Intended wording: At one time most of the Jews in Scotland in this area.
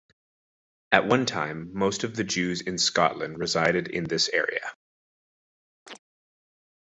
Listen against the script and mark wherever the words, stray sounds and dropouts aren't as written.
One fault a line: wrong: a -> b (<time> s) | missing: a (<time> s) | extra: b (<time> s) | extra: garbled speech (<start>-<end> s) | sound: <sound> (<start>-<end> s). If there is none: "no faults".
extra: resided (3.4 s)
sound: chirp (5.9-6.0 s)